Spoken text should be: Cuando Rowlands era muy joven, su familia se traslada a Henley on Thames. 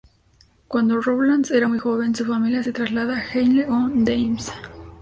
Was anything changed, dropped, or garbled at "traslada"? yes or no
no